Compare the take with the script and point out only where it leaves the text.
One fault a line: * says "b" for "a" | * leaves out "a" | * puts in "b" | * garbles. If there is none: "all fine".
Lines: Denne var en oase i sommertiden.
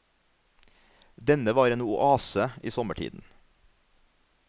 all fine